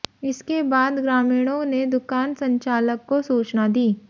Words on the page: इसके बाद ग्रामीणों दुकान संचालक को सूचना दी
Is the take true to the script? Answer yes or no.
no